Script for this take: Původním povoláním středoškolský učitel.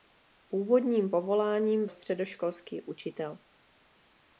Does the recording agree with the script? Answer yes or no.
yes